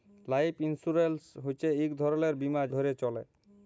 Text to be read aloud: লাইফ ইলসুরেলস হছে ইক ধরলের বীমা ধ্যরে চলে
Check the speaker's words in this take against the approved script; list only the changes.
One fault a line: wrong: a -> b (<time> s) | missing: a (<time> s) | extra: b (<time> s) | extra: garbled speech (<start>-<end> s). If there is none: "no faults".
no faults